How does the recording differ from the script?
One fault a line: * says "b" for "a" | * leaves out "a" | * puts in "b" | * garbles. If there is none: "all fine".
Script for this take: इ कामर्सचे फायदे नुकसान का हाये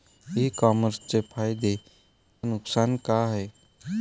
all fine